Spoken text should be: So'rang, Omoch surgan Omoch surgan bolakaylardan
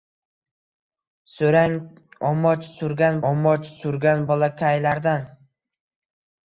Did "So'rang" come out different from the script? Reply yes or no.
no